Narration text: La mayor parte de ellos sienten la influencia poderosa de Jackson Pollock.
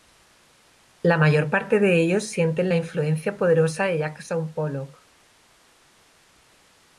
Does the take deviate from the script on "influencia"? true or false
false